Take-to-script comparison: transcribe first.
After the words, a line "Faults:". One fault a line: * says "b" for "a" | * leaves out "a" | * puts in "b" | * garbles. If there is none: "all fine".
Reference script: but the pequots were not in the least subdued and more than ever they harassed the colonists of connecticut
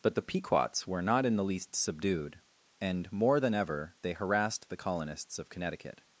but the pequots were not in the least subdued and more than ever they harassed the colonists of connecticut
Faults:
all fine